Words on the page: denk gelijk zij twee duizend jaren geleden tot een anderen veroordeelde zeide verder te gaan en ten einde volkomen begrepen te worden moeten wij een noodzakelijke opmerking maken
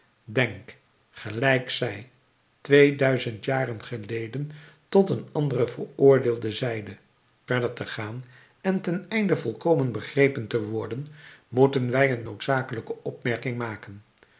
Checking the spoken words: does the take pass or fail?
pass